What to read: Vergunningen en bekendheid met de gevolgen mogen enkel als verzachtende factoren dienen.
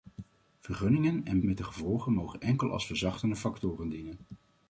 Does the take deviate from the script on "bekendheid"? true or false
true